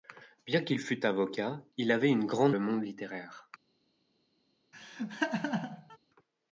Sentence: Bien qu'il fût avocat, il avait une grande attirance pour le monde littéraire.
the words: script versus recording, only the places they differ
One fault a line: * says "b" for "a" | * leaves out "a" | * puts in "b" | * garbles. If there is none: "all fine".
* leaves out "attirance pour"